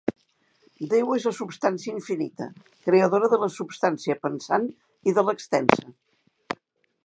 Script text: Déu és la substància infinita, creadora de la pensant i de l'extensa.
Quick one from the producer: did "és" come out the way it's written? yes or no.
yes